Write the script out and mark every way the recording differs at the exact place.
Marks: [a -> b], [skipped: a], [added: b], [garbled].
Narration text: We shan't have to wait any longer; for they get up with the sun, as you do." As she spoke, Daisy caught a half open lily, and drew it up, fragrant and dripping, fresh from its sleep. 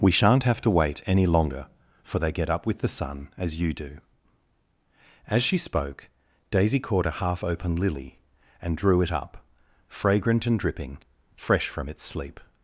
We shan't have to wait any longer; for they get up with the sun, as you do." As she spoke, Daisy caught a half open lily, and drew it up, fragrant and dripping, fresh from its sleep.